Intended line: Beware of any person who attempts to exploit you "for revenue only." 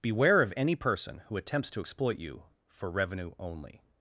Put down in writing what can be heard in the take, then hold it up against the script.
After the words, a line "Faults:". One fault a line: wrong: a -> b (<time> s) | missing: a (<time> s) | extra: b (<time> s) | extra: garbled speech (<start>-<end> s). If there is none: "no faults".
Beware of any person who attempts to exploit you "for revenue only."
Faults:
no faults